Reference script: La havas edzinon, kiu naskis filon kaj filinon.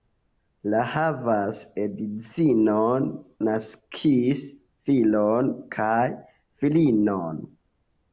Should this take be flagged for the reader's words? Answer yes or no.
yes